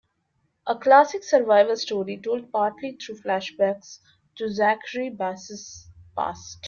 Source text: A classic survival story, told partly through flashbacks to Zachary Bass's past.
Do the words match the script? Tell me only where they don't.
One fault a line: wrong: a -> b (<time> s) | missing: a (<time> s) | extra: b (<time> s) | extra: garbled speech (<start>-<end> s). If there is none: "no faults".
no faults